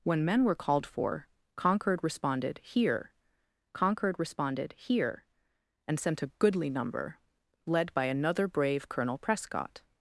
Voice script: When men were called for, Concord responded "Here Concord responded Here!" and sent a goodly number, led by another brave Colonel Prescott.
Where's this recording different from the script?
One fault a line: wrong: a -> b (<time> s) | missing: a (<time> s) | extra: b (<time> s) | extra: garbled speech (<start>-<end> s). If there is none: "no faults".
no faults